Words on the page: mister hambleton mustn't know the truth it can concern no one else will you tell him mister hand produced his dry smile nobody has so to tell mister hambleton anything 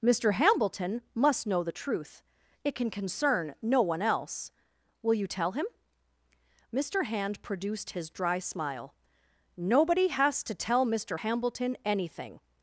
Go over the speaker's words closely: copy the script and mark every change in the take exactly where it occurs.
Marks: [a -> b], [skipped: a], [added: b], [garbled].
mister hambleton [mustn't -> must] know the truth it can concern no one else will you tell him mister hand produced his dry smile nobody has [skipped: so] to tell mister hambleton anything